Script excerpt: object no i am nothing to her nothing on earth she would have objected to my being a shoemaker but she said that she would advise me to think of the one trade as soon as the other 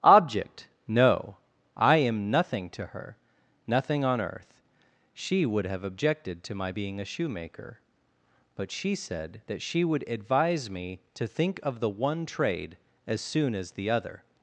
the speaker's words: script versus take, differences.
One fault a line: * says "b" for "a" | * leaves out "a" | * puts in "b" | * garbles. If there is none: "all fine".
all fine